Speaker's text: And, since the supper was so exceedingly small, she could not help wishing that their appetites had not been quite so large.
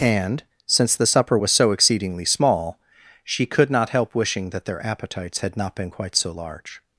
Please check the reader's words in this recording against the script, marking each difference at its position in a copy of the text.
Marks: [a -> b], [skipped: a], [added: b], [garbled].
And, since the supper was so exceedingly small, she could not help wishing that their appetites had not been quite so large.